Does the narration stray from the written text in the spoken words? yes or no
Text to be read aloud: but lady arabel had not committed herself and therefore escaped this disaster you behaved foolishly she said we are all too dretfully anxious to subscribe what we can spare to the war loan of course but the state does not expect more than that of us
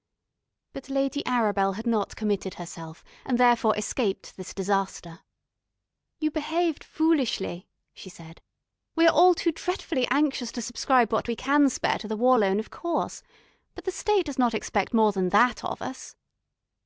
no